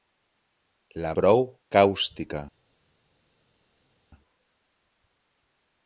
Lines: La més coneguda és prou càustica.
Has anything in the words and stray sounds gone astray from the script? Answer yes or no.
yes